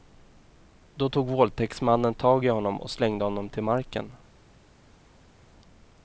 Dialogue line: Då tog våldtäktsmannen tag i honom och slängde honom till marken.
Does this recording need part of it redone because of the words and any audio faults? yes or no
no